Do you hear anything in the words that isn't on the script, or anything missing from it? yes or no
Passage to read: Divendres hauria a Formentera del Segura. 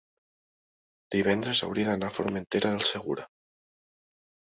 yes